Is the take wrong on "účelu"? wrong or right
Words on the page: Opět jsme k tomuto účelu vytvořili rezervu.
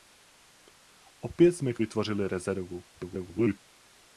wrong